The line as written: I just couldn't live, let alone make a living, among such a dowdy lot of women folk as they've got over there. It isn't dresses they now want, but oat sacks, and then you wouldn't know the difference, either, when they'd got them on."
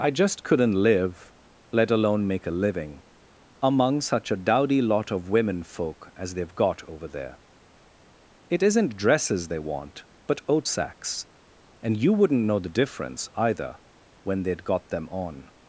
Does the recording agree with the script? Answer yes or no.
no